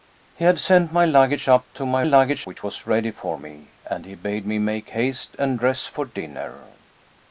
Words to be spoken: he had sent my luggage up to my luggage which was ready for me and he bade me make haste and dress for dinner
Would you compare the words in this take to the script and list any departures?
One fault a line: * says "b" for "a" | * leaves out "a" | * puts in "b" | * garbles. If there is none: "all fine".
all fine